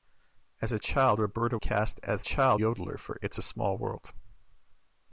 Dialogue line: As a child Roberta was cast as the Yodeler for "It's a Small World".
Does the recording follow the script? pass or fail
fail